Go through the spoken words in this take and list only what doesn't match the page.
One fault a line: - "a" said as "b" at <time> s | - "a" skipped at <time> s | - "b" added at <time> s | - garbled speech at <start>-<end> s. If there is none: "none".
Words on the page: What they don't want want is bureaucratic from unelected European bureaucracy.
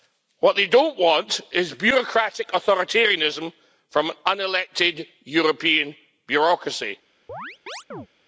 - "want" skipped at 1.4 s
- "authoritarianism" added at 2.5 s